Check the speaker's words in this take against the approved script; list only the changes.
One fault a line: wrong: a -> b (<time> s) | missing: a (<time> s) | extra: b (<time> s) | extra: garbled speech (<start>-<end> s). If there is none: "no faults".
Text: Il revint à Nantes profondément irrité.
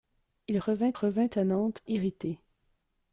extra: revint (0.9 s)
missing: profondément (1.8 s)